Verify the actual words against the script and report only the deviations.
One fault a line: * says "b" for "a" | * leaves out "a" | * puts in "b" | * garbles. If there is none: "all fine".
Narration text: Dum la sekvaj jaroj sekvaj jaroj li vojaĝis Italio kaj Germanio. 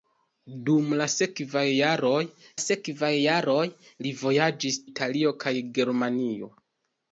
all fine